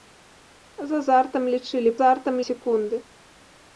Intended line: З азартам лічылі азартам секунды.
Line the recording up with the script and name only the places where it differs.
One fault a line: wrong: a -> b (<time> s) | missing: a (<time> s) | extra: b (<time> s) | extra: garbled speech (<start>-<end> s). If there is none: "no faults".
no faults